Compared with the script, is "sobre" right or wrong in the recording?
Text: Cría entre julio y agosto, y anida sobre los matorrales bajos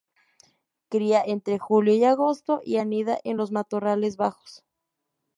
wrong